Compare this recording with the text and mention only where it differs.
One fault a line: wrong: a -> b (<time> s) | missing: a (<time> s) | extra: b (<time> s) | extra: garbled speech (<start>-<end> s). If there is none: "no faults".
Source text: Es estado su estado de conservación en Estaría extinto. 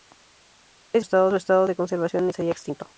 no faults